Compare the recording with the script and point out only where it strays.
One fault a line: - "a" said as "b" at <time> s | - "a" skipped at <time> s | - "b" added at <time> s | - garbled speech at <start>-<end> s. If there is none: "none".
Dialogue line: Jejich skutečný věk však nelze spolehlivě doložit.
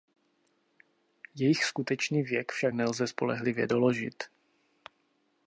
none